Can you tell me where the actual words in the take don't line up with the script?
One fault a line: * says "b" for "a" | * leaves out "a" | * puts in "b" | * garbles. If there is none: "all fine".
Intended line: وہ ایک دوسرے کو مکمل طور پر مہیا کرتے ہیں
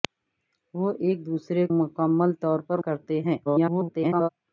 * leaves out "کو"
* leaves out "مہیا"
* garbles